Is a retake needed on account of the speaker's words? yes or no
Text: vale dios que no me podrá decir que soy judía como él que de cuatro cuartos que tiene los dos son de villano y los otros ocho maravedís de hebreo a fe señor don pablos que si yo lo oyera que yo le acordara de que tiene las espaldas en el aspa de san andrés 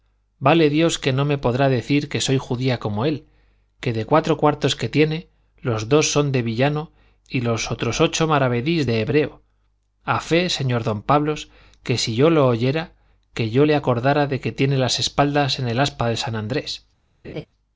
no